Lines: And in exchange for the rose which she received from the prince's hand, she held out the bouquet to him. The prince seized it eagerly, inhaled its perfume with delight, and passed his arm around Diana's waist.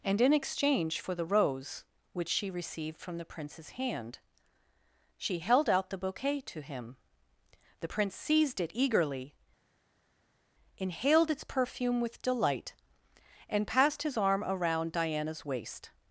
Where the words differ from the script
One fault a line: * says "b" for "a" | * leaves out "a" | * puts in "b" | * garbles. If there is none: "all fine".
all fine